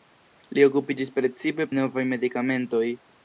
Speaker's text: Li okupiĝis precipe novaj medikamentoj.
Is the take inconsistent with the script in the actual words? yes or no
no